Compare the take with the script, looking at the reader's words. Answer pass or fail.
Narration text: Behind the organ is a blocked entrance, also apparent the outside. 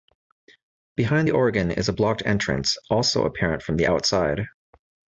fail